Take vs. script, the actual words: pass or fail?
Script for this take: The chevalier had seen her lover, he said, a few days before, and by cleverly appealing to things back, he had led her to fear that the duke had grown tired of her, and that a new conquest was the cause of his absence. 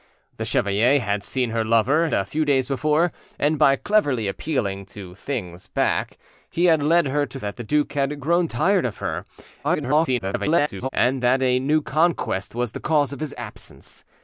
fail